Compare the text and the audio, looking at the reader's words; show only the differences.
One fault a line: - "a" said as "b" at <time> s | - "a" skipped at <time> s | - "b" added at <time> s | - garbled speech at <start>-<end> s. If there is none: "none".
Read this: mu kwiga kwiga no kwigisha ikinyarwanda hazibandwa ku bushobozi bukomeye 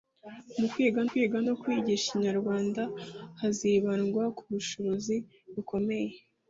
none